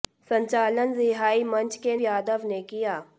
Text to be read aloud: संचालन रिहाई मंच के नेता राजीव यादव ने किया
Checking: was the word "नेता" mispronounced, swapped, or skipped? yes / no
yes